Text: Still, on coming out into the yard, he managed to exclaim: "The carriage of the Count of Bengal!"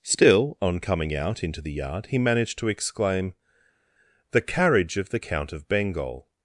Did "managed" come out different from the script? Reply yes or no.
no